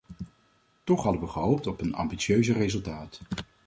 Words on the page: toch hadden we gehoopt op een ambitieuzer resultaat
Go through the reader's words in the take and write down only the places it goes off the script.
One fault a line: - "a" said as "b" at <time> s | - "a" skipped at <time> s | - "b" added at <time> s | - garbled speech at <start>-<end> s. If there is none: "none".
none